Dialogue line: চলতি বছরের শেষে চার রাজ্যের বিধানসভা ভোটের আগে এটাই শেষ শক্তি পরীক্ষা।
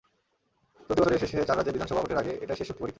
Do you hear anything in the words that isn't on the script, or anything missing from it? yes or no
no